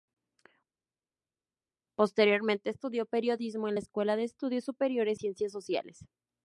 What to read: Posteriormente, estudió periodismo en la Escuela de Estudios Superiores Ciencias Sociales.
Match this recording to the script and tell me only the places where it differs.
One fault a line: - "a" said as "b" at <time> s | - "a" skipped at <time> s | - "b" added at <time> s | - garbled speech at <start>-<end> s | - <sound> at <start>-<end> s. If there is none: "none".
none